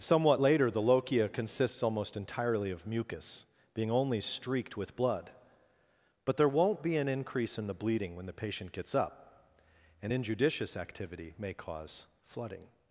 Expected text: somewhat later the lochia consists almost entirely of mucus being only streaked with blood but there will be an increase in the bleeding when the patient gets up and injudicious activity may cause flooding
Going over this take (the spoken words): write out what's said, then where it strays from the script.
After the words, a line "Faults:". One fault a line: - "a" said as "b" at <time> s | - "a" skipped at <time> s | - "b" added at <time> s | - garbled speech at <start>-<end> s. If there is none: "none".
somewhat later the lochia consists almost entirely of mucus being only streaked with blood but there won't be an increase in the bleeding when the patient gets up and injudicious activity may cause flooding
Faults:
- "will" said as "won't" at 6.5 s